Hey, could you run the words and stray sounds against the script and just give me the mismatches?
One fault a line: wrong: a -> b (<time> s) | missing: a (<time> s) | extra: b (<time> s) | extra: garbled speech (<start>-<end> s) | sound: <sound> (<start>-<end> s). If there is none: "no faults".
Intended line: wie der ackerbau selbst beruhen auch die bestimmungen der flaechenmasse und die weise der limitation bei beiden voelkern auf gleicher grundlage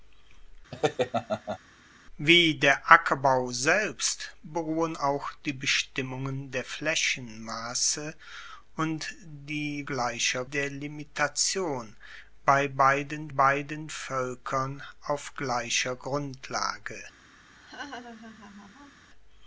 sound: laugh (0.7-1.6 s)
wrong: weise -> gleicher (9.8 s)
extra: beiden (13.3 s)
sound: laugh (17.5-19.1 s)